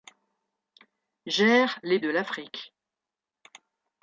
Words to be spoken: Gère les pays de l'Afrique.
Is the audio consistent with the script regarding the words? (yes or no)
no